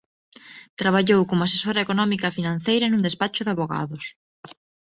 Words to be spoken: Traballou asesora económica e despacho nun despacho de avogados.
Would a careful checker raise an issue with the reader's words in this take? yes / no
yes